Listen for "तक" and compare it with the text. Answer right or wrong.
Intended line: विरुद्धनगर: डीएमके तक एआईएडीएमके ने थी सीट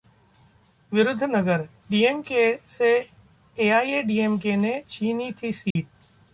wrong